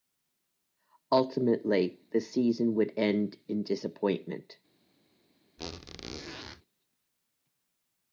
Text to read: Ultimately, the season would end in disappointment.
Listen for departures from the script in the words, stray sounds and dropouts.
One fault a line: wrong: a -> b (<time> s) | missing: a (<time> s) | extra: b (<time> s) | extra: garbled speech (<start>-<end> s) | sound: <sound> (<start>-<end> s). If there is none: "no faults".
sound: squeak (5.6-6.6 s)